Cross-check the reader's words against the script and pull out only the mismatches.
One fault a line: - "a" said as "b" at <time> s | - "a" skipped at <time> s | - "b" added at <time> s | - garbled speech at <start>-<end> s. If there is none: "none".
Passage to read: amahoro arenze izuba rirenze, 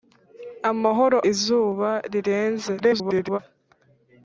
- "arenze" skipped at 1.2 s
- garbled speech at 2.8-3.4 s